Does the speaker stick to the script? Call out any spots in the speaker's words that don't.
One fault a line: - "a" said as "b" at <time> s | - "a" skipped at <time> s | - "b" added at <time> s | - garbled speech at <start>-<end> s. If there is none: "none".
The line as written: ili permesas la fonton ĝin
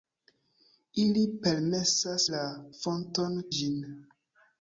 none